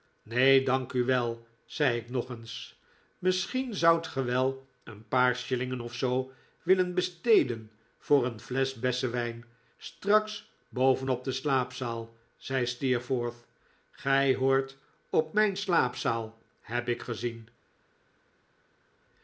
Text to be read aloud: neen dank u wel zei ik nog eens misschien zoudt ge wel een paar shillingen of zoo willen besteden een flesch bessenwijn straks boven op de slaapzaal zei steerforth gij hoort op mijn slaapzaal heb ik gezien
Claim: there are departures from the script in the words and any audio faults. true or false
true